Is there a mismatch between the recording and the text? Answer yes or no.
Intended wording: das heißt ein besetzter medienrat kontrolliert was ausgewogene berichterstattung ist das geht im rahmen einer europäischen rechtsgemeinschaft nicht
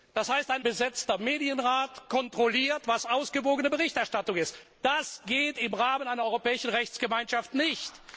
no